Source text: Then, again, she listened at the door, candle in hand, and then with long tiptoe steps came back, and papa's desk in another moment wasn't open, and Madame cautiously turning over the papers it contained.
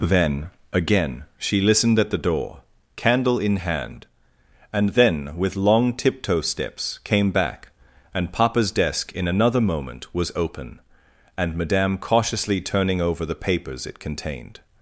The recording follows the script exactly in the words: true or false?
false